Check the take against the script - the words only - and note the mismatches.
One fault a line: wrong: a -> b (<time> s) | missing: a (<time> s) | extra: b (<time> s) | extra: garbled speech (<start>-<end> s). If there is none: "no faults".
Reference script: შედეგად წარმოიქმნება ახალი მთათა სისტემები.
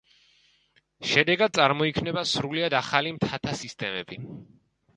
extra: სრულიად (2.3 s)